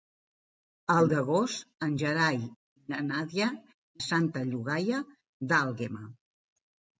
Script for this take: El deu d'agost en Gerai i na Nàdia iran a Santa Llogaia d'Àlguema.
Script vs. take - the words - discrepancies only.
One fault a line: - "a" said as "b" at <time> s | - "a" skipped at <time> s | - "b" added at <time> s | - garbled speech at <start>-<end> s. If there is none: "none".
- "deu" skipped at 1.1 s
- "iran" skipped at 3.5 s